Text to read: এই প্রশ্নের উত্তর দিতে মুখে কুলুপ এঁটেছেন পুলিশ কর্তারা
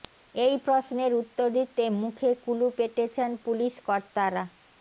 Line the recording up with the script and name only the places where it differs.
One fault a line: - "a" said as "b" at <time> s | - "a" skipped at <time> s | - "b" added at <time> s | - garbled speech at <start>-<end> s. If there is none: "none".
none